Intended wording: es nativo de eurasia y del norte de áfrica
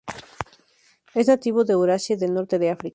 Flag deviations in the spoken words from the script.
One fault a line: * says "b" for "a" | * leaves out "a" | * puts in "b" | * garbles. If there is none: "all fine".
all fine